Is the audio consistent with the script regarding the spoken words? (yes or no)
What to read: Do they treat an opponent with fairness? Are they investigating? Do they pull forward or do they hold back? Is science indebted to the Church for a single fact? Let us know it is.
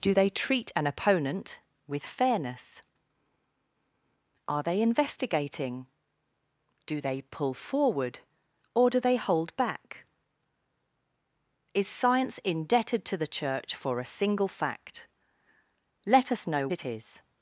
yes